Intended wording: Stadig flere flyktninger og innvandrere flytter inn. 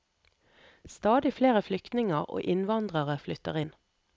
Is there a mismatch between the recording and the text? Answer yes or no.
no